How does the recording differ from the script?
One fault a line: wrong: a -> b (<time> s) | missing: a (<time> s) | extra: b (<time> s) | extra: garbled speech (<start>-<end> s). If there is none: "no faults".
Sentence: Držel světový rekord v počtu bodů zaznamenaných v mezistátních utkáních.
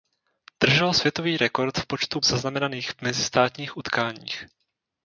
missing: bodů (2.2 s)